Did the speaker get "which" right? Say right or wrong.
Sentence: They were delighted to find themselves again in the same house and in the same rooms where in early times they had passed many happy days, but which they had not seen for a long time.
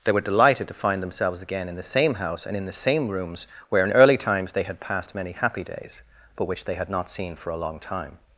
right